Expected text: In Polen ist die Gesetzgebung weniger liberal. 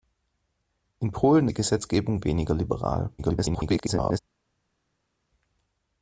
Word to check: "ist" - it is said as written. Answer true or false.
false